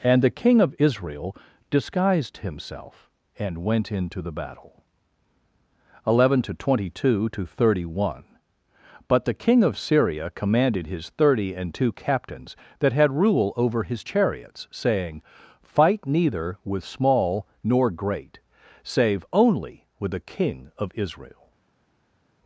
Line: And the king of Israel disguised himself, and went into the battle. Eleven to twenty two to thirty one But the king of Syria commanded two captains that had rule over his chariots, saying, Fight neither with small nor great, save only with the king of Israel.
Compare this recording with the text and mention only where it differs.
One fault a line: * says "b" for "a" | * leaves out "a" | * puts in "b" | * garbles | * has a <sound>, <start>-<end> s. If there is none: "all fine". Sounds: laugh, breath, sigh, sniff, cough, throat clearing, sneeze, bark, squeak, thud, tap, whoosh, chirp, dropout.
* puts in "his thirty and"